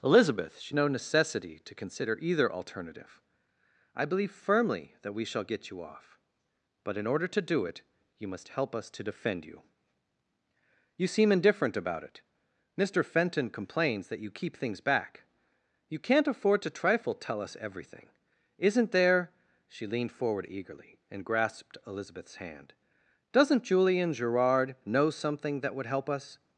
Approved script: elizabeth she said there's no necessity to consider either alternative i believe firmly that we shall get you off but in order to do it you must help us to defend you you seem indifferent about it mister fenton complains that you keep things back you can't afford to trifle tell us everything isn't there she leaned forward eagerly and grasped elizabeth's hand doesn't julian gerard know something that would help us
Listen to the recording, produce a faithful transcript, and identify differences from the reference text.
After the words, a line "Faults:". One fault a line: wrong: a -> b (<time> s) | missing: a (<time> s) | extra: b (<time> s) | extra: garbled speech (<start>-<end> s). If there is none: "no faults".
elizabeth she no necessity to consider either alternative i believe firmly that we shall get you off but in order to do it you must help us to defend you you seem indifferent about it mister fenton complains that you keep things back you can't afford to trifle tell us everything isn't there she leaned forward eagerly and grasped elizabeth's hand doesn't julian gerard know something that would help us
Faults:
missing: said there's (0.8 s)